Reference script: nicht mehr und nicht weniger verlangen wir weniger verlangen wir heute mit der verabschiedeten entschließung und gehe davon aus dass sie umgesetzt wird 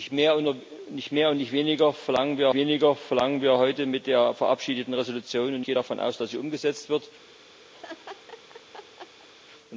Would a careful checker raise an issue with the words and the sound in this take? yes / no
yes